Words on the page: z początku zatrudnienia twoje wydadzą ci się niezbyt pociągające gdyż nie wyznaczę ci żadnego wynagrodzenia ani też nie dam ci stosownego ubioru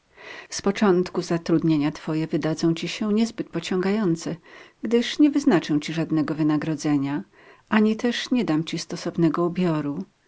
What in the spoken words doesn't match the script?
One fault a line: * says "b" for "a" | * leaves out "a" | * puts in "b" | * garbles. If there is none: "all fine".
all fine